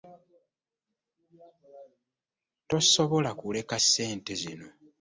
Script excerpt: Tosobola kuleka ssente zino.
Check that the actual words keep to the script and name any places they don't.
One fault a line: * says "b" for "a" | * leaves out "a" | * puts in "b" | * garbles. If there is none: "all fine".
all fine